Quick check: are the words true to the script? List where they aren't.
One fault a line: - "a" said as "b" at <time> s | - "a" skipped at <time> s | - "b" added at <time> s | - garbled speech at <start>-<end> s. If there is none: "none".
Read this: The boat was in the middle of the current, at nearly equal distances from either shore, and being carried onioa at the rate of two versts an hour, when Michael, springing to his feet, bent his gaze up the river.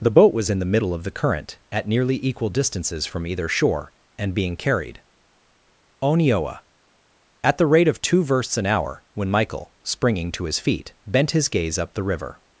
none